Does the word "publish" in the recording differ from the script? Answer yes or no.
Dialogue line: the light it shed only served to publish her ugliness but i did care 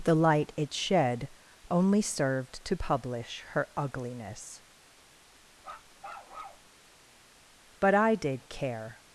no